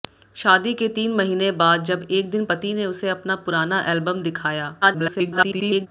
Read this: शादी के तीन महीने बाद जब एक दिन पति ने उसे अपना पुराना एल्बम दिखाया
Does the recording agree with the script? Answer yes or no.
no